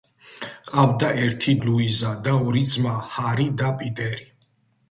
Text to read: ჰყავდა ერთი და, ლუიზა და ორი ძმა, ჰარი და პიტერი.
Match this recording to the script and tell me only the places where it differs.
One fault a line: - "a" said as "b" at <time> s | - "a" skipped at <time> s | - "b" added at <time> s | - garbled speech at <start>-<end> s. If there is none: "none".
- "და" skipped at 1.6 s